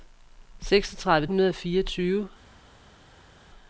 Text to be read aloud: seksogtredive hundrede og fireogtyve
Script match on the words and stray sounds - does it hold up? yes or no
yes